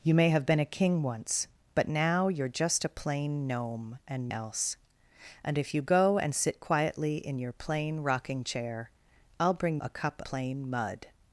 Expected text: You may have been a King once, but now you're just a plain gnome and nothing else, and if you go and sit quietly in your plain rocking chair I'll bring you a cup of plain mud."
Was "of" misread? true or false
true